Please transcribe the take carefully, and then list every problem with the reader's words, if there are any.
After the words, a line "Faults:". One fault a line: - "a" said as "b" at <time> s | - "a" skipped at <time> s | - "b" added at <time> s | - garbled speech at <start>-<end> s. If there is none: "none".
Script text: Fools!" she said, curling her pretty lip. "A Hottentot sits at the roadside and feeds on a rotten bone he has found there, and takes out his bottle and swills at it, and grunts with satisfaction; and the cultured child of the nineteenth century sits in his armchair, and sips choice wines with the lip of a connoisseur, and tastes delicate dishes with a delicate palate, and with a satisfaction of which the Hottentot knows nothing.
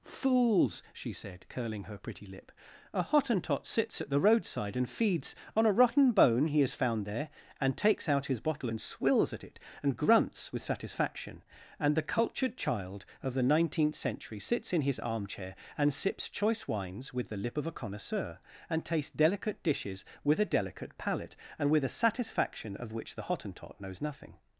Fools!" she said, curling her pretty lip. "A Hottentot sits at the roadside and feeds on a rotten bone he has found there, and takes out his bottle and swills at it, and grunts with satisfaction; and the cultured child of the nineteenth century sits in his armchair, and sips choice wines with the lip of a connoisseur, and tastes delicate dishes with a delicate palate, and with a satisfaction of which the Hottentot knows nothing.
Faults:
none